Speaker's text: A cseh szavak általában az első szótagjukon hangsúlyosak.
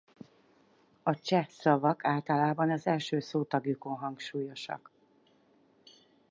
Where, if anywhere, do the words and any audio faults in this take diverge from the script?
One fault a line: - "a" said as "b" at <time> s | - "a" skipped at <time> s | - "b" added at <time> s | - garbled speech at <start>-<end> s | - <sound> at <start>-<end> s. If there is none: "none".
none